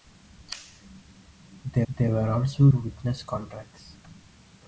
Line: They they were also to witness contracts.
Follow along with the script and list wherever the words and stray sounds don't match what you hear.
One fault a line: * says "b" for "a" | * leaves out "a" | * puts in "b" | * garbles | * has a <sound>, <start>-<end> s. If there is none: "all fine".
all fine